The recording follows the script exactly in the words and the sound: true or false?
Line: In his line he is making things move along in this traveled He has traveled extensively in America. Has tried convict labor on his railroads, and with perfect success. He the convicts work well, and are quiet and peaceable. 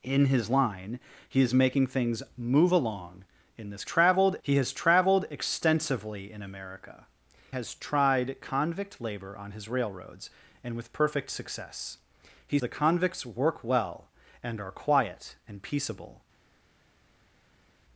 true